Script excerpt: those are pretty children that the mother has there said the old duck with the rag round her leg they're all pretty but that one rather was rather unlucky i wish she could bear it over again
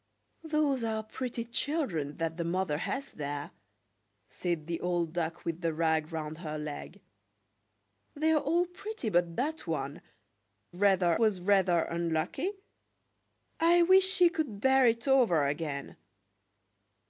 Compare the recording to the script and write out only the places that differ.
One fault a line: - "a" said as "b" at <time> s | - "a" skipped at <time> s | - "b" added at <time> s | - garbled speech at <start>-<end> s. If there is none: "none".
none